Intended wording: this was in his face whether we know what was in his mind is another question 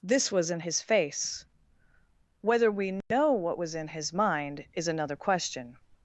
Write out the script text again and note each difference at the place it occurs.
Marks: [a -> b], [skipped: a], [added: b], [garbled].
this was in his face whether we know what was in his mind is another question